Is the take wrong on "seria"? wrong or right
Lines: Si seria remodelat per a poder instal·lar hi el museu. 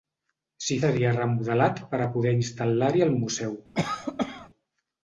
right